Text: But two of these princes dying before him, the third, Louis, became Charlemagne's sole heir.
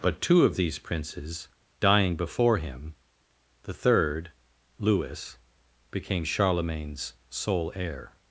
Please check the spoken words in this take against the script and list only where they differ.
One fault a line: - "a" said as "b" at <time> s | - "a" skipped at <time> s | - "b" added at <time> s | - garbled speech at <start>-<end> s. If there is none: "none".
none